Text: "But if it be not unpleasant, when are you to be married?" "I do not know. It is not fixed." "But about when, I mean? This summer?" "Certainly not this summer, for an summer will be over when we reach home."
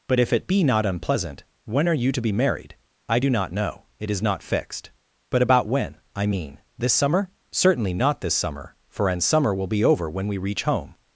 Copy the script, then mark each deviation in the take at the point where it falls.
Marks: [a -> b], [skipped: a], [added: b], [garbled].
"But if it be not unpleasant, when are you to be married?" "I do not know. It is not fixed." "But about when, I mean? This summer?" "Certainly not this summer, for an summer will be over when we reach home."